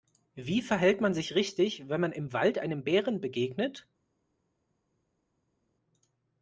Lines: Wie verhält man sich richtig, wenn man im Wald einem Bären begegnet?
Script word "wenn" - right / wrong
right